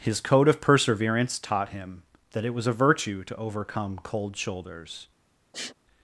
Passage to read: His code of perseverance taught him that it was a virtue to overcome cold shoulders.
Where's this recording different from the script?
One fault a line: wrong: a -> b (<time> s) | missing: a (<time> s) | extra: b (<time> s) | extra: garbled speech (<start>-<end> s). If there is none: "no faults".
no faults